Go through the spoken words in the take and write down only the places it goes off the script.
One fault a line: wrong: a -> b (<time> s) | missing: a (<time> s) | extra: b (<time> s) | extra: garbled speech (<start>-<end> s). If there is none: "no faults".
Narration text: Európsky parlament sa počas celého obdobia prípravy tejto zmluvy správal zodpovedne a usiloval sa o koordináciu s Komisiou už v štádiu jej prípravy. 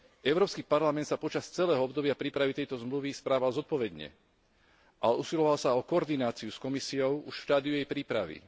no faults